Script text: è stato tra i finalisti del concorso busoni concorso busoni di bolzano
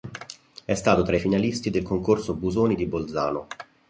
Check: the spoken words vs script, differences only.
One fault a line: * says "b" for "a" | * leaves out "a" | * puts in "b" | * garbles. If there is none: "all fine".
* leaves out "concorso busoni"